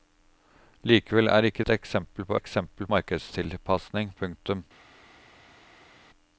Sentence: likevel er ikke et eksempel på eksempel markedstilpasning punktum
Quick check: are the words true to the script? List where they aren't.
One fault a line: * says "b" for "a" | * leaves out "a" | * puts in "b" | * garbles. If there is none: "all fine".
all fine